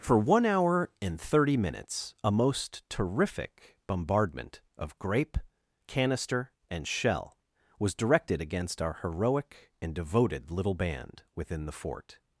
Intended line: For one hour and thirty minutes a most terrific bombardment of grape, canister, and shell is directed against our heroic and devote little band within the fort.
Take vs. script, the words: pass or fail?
fail